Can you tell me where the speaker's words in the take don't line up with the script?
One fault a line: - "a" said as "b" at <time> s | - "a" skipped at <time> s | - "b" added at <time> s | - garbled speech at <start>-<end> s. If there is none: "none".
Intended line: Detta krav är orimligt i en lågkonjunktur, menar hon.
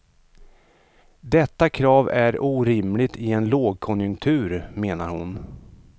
none